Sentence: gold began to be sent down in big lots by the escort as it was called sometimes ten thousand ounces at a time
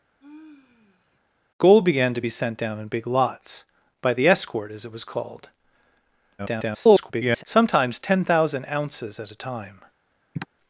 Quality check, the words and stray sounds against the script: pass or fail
fail